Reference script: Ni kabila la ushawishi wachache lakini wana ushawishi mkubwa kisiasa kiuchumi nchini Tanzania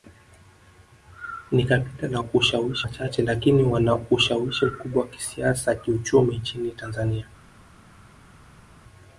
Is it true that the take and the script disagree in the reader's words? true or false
false